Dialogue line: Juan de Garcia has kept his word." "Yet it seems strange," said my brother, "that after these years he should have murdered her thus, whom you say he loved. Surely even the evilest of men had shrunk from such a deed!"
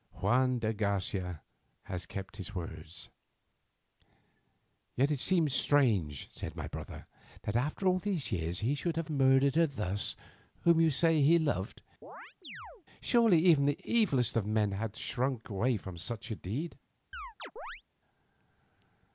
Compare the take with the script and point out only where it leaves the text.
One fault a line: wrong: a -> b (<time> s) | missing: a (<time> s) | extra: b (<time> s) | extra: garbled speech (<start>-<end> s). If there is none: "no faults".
extra: all (7.9 s)